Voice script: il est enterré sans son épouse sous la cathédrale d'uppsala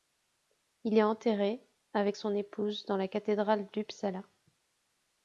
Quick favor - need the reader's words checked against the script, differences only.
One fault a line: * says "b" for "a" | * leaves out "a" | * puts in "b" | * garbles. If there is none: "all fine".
* says "avec" for "sans"
* says "dans" for "sous"